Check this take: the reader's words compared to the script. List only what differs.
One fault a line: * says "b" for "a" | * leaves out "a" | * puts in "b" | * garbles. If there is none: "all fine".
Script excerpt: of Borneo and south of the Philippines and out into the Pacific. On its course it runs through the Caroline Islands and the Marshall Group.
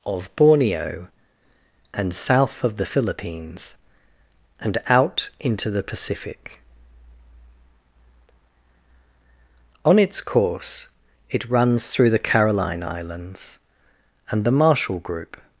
all fine